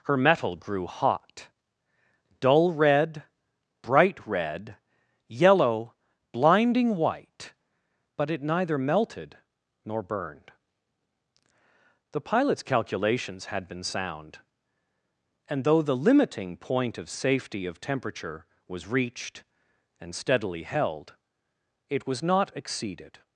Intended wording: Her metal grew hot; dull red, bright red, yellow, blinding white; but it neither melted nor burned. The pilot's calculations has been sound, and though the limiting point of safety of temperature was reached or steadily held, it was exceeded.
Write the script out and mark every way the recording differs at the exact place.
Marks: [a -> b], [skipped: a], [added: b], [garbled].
Her metal grew hot; dull red, bright red, yellow, blinding white; but it neither melted nor burned. The pilot's calculations [has -> had] been sound, and though the limiting point of safety of temperature was reached [or -> and] steadily held, it was [added: not] exceeded.